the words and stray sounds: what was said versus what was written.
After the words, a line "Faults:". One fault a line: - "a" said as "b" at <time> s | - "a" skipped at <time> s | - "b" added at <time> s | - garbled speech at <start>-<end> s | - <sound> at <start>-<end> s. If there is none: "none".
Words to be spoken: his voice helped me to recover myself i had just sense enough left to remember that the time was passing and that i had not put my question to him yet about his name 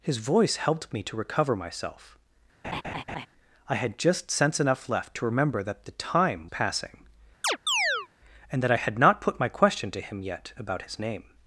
his voice helped me to recover myself i had just sense enough left to remember that the time passing and that i had not put my question to him yet about his name
Faults:
- laugh at 2.6-3.3 s
- "was" skipped at 6.5 s
- chirp at 7.4-8.1 s